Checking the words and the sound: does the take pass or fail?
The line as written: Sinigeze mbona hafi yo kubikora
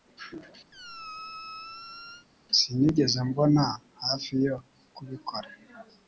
fail